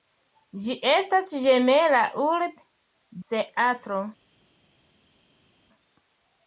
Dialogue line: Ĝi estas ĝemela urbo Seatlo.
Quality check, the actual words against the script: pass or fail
pass